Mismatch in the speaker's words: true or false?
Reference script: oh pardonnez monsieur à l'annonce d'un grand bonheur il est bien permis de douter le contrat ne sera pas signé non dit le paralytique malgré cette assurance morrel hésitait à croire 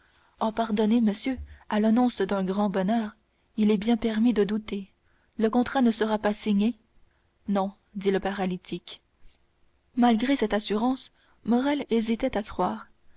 false